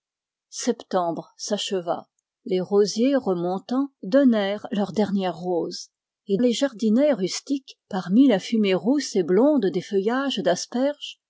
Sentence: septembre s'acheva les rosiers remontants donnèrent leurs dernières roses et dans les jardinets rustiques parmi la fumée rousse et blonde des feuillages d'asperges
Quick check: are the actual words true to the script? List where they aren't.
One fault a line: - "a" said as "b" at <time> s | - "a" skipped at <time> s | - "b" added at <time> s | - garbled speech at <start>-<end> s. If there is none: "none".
- "dans" skipped at 6.4 s